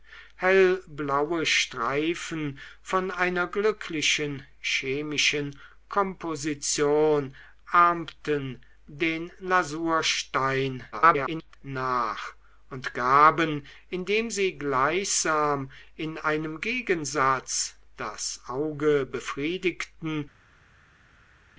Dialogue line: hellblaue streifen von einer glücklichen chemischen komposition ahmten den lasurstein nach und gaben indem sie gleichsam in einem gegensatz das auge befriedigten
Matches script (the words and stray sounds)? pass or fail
fail